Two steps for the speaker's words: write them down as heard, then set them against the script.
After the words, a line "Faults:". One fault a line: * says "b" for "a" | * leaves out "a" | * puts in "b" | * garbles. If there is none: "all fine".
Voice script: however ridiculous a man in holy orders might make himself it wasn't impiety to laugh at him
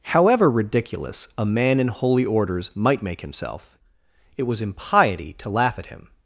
however ridiculous a man in holy orders might make himself it was impiety to laugh at him
Faults:
* says "was" for "wasn't"